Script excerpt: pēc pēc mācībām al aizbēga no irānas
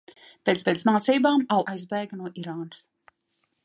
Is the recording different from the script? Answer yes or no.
no